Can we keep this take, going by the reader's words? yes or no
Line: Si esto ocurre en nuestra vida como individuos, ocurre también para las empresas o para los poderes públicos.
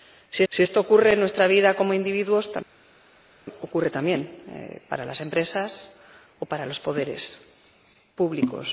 no